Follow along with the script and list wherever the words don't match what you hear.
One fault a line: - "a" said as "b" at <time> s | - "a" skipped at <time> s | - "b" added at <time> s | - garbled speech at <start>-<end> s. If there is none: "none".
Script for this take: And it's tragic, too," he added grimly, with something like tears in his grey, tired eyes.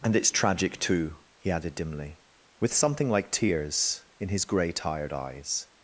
- "grimly" said as "dimly" at 1.8 s